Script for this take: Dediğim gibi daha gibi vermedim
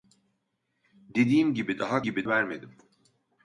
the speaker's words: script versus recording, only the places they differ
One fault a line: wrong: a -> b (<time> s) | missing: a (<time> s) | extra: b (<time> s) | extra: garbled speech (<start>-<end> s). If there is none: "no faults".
no faults